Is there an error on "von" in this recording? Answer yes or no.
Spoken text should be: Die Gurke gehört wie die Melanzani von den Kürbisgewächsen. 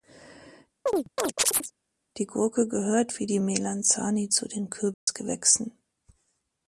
yes